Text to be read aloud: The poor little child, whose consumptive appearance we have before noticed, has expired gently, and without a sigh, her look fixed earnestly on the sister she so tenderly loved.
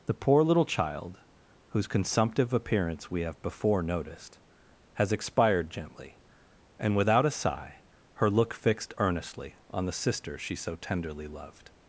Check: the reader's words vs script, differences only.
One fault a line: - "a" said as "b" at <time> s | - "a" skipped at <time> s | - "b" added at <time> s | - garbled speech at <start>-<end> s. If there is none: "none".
none